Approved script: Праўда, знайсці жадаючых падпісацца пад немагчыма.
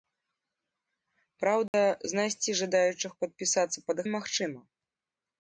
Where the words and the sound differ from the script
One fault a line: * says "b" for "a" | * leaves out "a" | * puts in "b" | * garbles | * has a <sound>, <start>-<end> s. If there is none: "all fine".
* has a dropout, 1.7-1.7 s